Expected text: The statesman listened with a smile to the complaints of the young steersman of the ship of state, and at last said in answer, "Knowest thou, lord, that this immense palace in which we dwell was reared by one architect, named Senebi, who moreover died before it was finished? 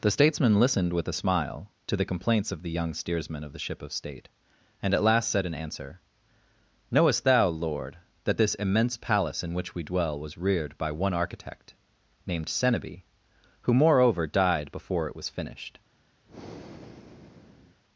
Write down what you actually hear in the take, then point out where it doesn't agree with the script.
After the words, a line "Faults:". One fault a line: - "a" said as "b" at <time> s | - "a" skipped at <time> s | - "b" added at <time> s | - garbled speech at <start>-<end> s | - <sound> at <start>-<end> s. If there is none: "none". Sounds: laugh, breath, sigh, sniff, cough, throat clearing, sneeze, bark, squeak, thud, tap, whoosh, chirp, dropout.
The statesman listened with a smile to the complaints of the young steersman of the ship of state, and at last said in answer, "Knowest thou, lord, that this immense palace in which we dwell was reared by one architect, named Senebi, who moreover died before it was finished?
Faults:
- breath at 16.2-17.8 s